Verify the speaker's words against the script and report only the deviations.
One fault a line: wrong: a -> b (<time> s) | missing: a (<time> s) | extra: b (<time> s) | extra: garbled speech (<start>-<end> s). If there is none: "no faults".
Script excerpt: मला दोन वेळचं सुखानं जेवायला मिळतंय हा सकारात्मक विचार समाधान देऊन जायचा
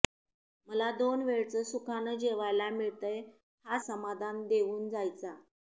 missing: सकारात्मक विचार (3.8 s)